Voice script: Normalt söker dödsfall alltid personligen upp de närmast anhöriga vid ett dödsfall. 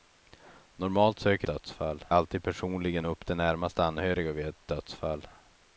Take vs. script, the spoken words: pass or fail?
pass